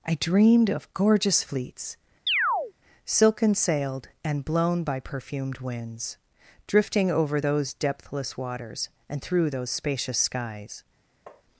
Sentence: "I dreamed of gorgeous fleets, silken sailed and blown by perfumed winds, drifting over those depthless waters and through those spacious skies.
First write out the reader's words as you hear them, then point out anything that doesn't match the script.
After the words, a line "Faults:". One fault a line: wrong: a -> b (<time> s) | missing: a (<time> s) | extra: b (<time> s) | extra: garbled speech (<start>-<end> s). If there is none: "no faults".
"I dreamed of gorgeous fleets, silken sailed and blown by perfumed winds, drifting over those depthless waters and through those spacious skies.
Faults:
no faults